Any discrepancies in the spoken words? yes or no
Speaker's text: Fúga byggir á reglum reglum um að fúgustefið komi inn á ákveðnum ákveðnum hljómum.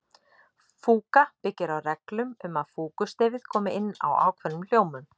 yes